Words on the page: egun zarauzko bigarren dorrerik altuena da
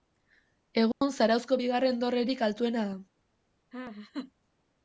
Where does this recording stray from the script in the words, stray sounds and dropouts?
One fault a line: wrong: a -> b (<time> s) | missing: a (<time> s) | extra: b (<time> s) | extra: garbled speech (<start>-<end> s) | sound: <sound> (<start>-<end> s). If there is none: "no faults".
sound: dropout (0.9-1.0 s)
sound: laugh (3.7-4.3 s)